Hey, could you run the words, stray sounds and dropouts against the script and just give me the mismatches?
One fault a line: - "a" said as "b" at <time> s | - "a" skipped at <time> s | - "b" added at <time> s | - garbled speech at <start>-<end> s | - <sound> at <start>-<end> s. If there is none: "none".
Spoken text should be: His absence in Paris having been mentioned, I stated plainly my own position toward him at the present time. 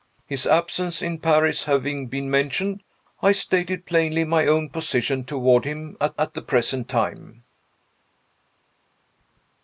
- "at" added at 6.2 s